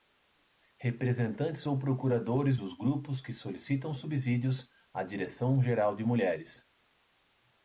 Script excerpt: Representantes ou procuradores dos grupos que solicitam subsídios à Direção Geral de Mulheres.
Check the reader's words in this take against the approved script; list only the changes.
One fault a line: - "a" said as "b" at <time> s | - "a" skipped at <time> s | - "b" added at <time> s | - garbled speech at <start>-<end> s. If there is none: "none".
none